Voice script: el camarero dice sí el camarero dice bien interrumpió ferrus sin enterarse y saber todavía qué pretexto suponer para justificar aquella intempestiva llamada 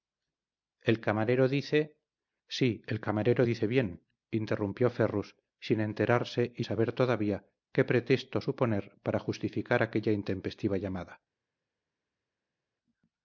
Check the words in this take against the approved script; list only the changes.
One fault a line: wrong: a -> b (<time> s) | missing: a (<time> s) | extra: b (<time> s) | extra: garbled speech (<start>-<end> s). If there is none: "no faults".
no faults